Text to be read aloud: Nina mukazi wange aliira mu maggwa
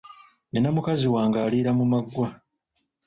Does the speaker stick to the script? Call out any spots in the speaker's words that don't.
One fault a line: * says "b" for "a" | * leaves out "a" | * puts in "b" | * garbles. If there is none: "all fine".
all fine